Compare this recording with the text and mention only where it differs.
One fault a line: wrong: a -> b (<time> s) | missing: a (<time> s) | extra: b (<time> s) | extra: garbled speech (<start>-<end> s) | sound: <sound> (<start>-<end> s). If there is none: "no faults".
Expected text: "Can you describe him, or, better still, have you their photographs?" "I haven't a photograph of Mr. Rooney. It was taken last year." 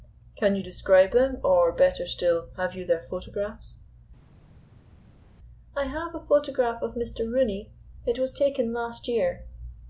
wrong: him -> them (1.1 s)
wrong: haven't -> have (5.8 s)